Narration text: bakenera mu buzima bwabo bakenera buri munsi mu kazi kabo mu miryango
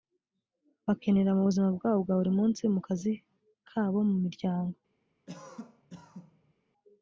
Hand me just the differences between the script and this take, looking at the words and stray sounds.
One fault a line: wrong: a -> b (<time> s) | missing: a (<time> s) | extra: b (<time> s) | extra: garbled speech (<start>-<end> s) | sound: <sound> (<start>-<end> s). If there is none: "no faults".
wrong: bakenera -> bwa (2.0 s)
sound: cough (5.3-6.5 s)